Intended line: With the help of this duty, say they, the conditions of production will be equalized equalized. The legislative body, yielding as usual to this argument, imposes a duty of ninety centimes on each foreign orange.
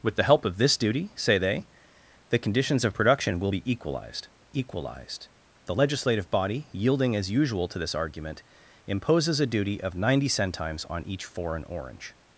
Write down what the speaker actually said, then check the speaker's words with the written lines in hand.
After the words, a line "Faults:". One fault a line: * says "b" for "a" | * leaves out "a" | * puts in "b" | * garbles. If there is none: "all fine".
With the help of this duty, say they, the conditions of production will be equalized equalized. The legislative body, yielding as usual to this argument, imposes a duty of ninety centimes on each foreign orange.
Faults:
all fine